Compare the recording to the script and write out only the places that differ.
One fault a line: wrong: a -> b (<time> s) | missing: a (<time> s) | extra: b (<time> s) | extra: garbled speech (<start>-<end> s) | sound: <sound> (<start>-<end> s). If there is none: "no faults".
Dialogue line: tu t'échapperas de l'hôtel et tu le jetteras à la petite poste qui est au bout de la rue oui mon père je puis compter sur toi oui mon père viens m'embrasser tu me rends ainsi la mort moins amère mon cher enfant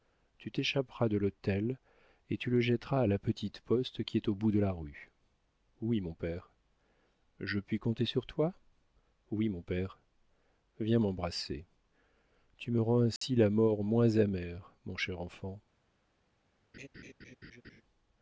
sound: dropout (13.2-13.2 s)
sound: laugh (16.7-17.8 s)